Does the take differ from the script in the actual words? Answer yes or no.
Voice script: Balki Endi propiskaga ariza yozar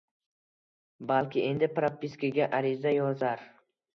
no